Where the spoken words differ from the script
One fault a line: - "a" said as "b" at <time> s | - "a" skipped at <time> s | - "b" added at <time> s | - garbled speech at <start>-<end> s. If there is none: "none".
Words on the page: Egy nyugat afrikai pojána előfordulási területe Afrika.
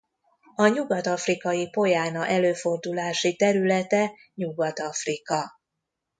- "Egy" said as "A" at 0.6 s
- "Nyugat" added at 4.3 s